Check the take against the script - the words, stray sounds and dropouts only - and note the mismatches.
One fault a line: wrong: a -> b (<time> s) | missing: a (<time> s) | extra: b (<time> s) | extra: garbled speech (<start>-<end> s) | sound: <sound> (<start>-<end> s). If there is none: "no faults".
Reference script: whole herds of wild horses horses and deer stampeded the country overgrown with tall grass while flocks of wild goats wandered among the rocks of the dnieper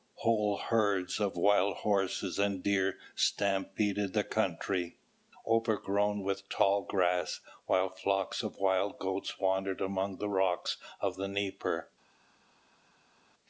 missing: horses (2.4 s)